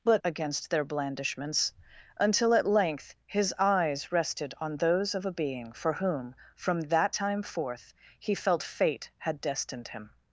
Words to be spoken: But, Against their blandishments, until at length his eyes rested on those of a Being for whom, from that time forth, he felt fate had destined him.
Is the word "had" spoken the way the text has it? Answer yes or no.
yes